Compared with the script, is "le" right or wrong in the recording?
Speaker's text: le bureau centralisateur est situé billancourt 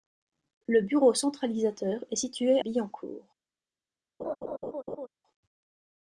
right